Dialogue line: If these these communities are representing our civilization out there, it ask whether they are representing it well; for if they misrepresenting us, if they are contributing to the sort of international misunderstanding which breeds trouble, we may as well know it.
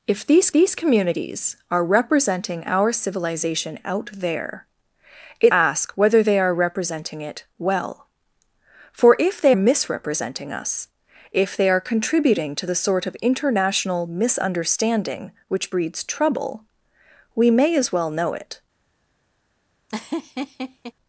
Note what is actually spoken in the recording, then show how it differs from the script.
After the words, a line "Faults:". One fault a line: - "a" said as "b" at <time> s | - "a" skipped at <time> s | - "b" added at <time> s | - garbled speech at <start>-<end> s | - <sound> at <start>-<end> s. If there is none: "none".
If these these communities are representing our civilization out there, it ask whether they are representing it well; for if they misrepresenting us, if they are contributing to the sort of international misunderstanding which breeds trouble, we may as well know it.
Faults:
- laugh at 19.9-20.9 s